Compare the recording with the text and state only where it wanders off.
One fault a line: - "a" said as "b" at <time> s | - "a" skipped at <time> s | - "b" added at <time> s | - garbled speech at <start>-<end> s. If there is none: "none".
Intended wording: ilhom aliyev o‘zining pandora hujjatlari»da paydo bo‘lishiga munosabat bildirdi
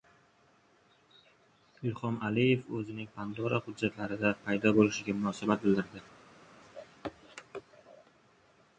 none